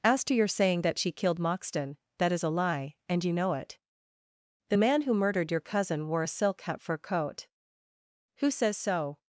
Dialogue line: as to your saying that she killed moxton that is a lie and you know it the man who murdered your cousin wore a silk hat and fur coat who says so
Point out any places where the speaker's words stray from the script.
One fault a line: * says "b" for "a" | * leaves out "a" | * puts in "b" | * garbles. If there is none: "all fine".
* leaves out "and"